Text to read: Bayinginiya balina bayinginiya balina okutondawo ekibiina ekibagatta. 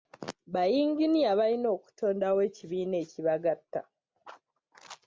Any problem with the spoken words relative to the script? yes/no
yes